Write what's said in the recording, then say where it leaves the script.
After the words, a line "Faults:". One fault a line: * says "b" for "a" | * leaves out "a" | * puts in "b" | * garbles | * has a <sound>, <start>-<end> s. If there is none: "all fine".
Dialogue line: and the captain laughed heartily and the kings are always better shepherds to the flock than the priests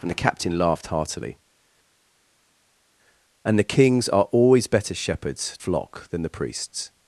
and the captain laughed heartily and the kings are always better shepherds flock than the priests
Faults:
* leaves out "to the"